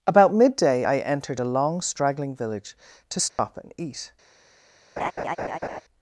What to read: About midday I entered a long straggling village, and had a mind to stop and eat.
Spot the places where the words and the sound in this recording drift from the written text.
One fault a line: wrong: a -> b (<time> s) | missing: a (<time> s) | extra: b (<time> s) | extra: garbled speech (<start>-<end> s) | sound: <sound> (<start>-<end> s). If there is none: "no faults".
missing: and had a mind (2.8 s)
sound: dropout (3.3-3.4 s)
sound: laugh (5.0-5.8 s)